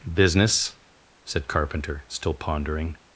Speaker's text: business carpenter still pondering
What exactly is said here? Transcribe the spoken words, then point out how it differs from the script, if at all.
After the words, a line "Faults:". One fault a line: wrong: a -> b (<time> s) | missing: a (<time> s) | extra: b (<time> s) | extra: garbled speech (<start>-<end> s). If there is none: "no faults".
business said carpenter still pondering
Faults:
extra: said (1.2 s)